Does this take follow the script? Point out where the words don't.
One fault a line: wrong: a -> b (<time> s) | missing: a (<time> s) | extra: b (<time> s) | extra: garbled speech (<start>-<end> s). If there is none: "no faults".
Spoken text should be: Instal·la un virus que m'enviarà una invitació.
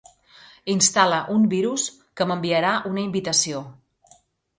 no faults